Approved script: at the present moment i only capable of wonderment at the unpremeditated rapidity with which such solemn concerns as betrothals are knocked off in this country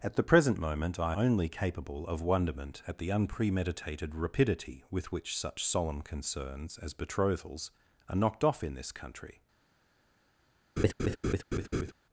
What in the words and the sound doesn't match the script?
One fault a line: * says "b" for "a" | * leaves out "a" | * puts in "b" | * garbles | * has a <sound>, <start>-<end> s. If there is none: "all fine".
* has a laugh, 10.8-11.9 s